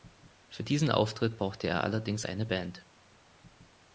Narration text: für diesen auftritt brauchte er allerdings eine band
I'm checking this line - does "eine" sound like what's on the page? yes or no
yes